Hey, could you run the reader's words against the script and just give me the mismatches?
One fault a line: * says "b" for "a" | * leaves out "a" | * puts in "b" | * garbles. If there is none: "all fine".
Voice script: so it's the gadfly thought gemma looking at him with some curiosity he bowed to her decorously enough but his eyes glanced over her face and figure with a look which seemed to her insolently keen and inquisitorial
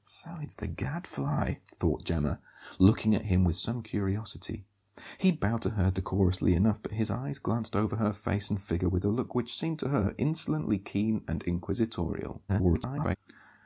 * garbles